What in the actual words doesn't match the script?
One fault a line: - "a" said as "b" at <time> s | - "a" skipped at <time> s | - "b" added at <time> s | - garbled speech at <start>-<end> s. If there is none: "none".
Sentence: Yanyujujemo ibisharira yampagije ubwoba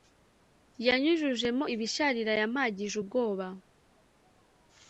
none